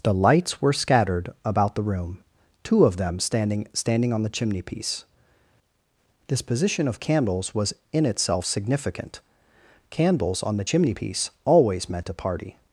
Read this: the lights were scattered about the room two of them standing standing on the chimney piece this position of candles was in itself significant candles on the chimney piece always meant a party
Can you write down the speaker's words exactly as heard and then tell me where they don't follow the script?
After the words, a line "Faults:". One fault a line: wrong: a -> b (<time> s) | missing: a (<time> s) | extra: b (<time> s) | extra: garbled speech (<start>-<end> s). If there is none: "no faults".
the lights were scattered about the room two of them standing standing on the chimney piece this position of candles was in itself significant candles on the chimney piece always meant a party
Faults:
no faults